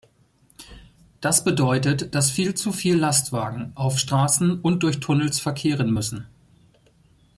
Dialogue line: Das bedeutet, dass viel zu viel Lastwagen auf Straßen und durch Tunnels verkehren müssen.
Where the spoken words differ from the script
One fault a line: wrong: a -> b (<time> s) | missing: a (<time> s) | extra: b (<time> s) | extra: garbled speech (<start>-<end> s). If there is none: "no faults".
no faults